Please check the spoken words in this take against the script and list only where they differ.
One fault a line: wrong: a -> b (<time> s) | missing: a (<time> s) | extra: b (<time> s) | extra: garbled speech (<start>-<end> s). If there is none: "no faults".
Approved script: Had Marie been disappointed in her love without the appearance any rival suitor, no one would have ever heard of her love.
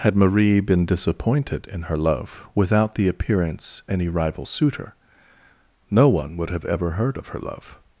no faults